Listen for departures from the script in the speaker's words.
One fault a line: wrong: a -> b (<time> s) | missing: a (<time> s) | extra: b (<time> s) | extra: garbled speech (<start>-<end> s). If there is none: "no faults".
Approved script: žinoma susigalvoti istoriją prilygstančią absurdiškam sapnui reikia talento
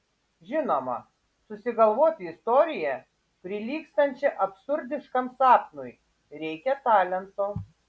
no faults